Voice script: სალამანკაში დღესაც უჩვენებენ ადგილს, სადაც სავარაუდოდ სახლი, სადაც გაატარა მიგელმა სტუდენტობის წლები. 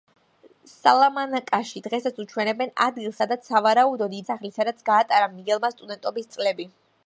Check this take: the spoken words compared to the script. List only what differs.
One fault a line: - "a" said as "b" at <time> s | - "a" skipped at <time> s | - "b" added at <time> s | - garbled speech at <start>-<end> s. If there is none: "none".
none